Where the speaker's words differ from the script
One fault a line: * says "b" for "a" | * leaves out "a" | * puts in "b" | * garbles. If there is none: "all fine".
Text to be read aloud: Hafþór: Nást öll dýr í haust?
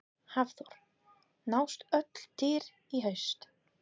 all fine